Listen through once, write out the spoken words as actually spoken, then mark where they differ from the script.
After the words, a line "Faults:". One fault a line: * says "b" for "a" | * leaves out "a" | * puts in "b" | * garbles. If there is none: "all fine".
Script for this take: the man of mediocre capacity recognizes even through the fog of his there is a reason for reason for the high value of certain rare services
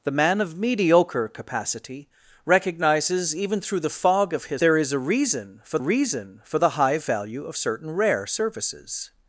the man of mediocre capacity recognizes even through the fog of his there is a reason for reason for the high value of certain rare services
Faults:
all fine